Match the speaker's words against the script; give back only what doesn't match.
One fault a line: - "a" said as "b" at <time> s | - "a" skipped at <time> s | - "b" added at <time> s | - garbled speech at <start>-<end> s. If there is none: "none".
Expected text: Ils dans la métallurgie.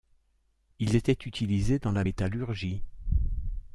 - "étaient utilisés" added at 0.9 s